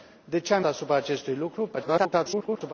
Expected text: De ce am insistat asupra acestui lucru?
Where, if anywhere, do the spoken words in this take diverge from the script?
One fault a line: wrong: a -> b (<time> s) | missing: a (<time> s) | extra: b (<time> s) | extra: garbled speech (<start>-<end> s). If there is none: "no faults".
missing: insistat (0.7 s)
extra: garbled speech (1.8-2.7 s)